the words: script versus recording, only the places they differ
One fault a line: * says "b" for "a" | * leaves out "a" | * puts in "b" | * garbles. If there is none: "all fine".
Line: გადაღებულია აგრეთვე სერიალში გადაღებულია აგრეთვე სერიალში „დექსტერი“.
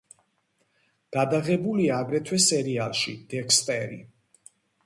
* leaves out "გადაღებულია აგრეთვე სერიალში"